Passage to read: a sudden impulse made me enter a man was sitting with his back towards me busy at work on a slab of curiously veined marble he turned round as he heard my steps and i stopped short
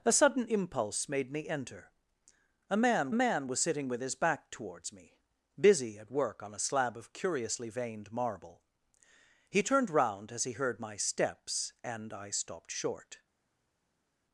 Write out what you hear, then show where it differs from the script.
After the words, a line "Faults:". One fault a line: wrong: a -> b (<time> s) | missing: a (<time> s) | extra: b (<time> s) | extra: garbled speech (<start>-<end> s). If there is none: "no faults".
a sudden impulse made me enter a man man was sitting with his back towards me busy at work on a slab of curiously veined marble he turned round as he heard my steps and i stopped short
Faults:
extra: man (3.1 s)